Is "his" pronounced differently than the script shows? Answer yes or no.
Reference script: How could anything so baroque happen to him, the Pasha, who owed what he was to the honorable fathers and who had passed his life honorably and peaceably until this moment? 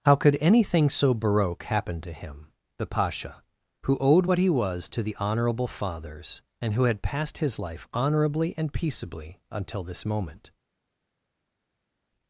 no